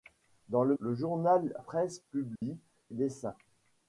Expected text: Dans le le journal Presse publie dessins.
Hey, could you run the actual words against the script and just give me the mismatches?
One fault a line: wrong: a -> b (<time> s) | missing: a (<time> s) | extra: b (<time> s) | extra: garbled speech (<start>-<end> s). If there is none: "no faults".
no faults